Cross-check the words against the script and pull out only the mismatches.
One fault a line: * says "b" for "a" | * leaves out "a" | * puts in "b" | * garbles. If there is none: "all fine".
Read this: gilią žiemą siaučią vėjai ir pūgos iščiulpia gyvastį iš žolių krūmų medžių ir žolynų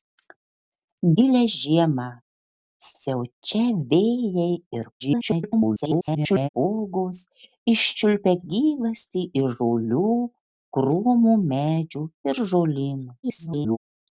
* garbles
* garbles